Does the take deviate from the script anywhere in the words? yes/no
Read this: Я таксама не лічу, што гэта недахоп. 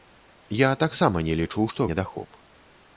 yes